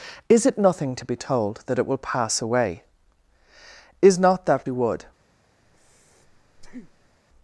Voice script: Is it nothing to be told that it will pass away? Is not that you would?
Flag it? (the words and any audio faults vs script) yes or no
yes